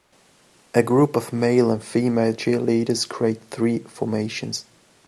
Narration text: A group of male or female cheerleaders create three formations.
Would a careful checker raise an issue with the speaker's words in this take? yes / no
yes